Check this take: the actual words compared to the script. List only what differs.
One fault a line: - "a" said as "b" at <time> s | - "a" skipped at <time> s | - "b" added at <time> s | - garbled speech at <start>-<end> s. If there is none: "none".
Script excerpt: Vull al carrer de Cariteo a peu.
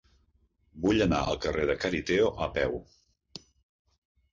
- "anar" added at 1.1 s